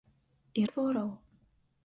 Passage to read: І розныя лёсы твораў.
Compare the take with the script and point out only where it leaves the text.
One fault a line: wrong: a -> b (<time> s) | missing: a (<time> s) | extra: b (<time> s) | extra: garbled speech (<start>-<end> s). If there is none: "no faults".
missing: розныя лёсы (0.6 s)